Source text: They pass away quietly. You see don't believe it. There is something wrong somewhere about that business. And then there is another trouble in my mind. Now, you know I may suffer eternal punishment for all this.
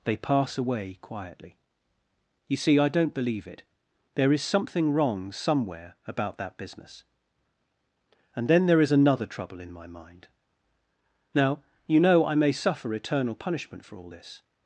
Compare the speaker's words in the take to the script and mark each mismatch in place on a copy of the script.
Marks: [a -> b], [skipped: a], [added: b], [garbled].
They pass away quietly. You see [added: I] don't believe it. There is something wrong somewhere about that business. And then there is another trouble in my mind. Now, you know I may suffer eternal punishment for all this.